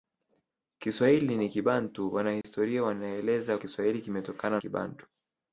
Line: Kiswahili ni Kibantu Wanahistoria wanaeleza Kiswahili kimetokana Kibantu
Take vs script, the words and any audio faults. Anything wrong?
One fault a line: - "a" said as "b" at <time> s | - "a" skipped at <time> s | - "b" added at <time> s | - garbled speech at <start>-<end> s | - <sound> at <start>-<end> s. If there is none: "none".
- dropout at 2.4-2.4 s